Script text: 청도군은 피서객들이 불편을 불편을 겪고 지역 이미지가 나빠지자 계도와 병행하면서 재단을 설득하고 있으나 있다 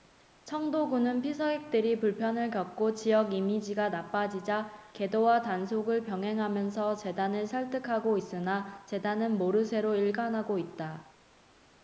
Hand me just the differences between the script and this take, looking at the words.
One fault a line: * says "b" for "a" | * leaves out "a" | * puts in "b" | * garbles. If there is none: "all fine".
* leaves out "불편을"
* puts in "단속을"
* puts in "재단은 모르쇠로 일관하고"